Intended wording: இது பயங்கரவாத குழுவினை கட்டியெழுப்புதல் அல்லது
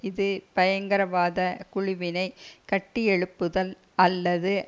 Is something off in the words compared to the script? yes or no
no